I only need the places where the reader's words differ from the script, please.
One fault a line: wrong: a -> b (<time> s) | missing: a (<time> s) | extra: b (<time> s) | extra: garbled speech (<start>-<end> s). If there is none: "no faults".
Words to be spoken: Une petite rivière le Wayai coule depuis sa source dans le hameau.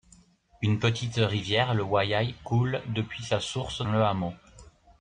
missing: dans (3.9 s)